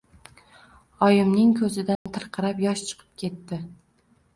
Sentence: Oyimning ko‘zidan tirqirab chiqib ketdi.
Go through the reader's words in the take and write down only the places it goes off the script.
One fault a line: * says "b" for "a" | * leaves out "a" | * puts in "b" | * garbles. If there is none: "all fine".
* puts in "yosh"